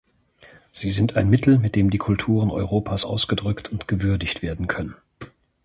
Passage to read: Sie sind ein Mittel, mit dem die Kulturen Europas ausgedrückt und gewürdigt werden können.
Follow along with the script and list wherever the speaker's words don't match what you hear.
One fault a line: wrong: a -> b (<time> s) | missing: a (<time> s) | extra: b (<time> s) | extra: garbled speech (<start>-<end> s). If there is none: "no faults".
no faults